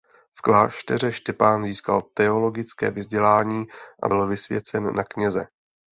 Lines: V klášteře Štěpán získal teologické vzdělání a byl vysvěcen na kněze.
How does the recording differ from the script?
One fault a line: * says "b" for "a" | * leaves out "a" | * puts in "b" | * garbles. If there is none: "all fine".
all fine